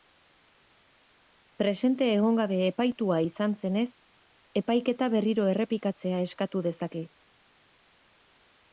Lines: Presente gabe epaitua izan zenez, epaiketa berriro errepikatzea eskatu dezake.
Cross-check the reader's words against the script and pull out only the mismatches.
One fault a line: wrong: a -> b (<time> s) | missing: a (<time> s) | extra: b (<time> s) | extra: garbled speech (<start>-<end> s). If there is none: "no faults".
extra: egon (2.1 s)